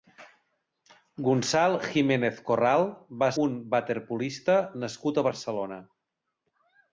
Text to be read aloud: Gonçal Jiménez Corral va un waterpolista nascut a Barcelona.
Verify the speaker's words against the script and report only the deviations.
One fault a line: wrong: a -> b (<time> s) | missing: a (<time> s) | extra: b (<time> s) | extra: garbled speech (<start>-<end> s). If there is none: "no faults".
no faults